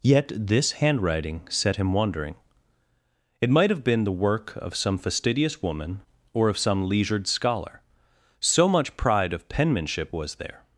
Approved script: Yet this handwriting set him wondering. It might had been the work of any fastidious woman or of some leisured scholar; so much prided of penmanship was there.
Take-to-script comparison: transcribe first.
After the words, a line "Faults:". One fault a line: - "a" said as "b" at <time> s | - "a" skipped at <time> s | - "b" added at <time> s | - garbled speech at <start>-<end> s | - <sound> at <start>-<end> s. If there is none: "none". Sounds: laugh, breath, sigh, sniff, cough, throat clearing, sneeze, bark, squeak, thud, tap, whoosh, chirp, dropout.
Yet this handwriting set him wondering. It might have been the work of some fastidious woman or of some leisured scholar; so much pride of penmanship was there.
Faults:
- "had" said as "have" at 3.7 s
- "any" said as "some" at 4.8 s
- "prided" said as "pride" at 8.9 s